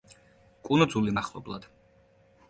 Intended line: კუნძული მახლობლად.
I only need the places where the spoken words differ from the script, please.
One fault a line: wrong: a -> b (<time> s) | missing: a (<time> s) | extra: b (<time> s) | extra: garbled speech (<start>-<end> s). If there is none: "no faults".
no faults